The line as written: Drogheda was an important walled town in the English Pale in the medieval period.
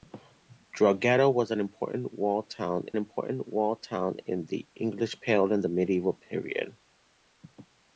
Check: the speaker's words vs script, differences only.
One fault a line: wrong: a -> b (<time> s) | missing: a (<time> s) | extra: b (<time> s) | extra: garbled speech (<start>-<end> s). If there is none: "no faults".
extra: important walled town (3.0 s)